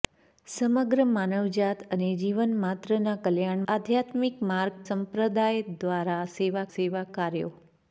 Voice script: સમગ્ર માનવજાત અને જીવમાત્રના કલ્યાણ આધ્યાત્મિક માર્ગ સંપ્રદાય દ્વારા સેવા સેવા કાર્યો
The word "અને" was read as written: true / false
true